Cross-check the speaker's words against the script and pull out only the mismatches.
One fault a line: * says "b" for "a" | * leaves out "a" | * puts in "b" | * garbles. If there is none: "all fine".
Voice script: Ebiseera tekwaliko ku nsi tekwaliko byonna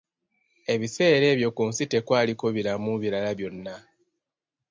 * says "ebyo" for "tekwaliko"
* puts in "biramu birala"